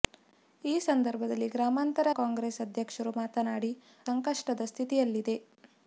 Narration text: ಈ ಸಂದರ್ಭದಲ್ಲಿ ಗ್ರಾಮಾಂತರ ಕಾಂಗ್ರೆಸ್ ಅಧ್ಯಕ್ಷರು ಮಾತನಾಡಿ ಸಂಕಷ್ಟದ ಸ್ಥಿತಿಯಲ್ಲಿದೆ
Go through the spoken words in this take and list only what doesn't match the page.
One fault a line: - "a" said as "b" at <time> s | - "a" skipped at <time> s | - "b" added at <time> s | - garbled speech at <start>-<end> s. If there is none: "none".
none